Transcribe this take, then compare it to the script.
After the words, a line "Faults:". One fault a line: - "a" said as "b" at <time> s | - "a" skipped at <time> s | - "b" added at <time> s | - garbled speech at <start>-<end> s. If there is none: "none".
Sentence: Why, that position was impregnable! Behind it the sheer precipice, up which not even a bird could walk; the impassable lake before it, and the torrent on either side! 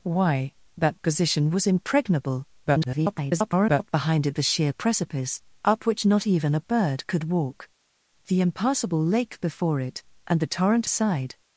Why, that position was impregnable! [garbled] Behind it the sheer precipice, up which not even a bird could walk; the impassable lake before it, and the torrent side!
Faults:
- garbled speech at 2.7-3.9 s
- "on either" skipped at 10.9 s